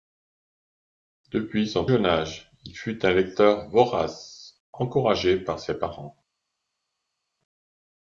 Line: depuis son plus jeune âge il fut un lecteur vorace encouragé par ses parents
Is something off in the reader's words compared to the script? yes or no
yes